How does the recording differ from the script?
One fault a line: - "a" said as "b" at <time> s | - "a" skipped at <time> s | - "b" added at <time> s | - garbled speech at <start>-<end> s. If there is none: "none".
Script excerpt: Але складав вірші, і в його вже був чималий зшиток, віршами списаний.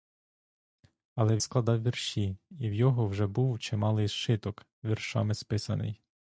none